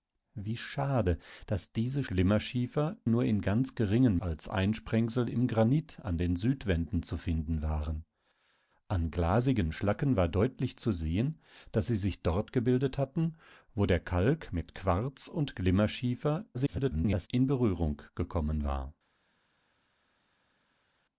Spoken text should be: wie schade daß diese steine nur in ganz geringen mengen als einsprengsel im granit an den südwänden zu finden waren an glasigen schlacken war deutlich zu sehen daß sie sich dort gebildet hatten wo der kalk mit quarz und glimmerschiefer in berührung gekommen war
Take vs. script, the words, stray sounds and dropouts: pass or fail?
fail